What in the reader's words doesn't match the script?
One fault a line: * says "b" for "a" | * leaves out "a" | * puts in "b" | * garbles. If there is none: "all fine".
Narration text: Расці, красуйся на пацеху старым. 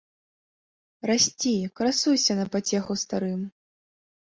all fine